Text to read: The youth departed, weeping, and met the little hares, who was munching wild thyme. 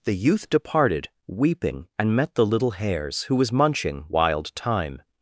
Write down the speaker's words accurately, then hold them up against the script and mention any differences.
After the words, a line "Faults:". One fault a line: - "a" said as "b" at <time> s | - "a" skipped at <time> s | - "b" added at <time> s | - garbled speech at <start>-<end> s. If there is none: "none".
The youth departed, weeping, and met the little hares, who was munching wild thyme.
Faults:
none